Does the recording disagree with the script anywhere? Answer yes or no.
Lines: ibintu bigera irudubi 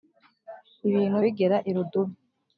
no